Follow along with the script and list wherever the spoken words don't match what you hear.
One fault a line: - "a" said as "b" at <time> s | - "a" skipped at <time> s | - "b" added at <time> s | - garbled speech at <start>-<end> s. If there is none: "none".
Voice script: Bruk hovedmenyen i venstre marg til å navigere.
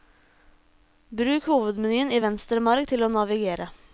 none